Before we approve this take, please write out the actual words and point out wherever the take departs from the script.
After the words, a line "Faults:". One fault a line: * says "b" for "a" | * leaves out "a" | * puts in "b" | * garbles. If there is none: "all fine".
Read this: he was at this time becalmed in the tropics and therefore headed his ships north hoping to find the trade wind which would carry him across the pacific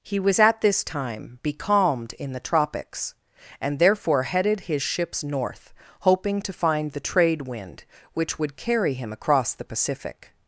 he was at this time becalmed in the tropics and therefore headed his ships north hoping to find the trade wind which would carry him across the pacific
Faults:
all fine